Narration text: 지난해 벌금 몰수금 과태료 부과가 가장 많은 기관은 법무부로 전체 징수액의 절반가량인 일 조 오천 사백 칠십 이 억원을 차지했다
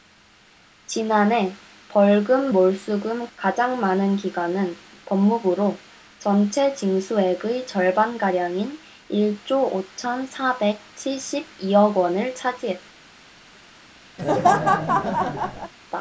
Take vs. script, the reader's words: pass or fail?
fail